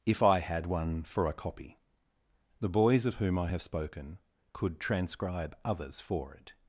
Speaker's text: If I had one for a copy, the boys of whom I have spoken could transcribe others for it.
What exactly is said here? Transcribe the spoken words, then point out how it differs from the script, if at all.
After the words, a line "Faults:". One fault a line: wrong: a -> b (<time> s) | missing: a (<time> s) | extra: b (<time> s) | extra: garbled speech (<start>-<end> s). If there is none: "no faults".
If I had one for a copy, the boys of whom I have spoken could transcribe others for it.
Faults:
no faults